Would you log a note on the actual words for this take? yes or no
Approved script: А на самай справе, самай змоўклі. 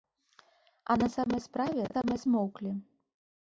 no